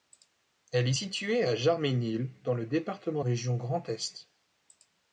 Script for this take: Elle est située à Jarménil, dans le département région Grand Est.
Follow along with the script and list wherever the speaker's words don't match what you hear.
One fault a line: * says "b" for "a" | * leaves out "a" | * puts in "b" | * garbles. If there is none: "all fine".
all fine